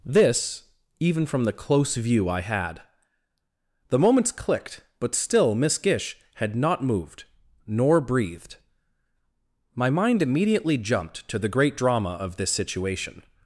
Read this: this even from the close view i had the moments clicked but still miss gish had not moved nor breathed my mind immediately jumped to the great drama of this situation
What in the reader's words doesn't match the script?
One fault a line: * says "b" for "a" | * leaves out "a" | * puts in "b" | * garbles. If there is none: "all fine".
all fine